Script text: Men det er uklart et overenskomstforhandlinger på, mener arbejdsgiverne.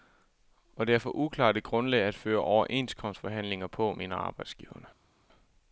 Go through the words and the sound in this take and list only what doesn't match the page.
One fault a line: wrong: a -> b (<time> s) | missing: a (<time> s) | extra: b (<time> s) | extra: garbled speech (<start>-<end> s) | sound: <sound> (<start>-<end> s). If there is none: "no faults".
wrong: Men -> Og (0.8 s)
extra: for (1.0 s)
extra: grundlag at føre (1.6 s)